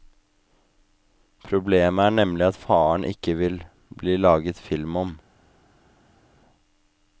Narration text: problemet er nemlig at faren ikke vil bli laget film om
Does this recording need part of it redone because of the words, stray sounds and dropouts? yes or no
no